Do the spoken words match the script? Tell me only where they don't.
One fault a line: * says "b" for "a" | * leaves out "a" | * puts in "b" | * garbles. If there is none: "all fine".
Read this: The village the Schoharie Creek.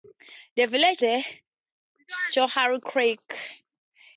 all fine